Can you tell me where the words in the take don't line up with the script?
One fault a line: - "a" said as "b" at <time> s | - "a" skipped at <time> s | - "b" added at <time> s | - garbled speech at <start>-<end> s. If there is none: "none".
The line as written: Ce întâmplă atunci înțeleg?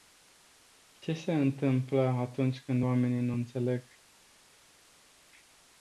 - "se" added at 1.1 s
- "când oamenii nu" added at 2.6 s